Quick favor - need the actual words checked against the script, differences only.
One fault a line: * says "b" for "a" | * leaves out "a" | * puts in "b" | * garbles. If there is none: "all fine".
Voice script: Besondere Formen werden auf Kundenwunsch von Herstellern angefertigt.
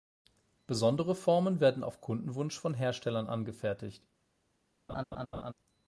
all fine